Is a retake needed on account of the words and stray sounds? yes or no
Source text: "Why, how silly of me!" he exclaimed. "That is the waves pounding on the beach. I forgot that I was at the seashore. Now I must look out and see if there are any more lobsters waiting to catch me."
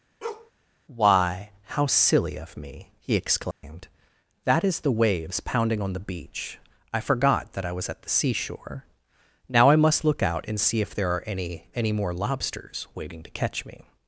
yes